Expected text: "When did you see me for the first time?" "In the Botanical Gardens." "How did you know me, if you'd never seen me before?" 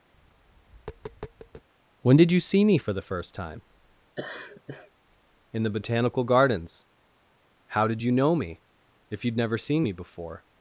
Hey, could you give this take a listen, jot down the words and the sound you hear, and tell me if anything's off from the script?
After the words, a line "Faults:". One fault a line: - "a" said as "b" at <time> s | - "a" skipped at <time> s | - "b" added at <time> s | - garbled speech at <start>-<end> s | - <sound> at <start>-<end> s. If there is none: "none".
"When did you see me for the first time?" "In the Botanical Gardens." "How did you know me, if you'd never seen me before?"
Faults:
- tap at 0.1-1.7 s
- laugh at 4.2-4.9 s